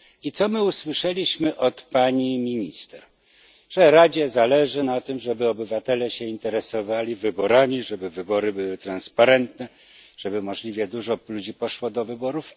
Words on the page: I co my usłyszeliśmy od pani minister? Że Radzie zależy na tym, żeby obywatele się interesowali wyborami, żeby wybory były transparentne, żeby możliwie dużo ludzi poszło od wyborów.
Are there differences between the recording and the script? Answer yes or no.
yes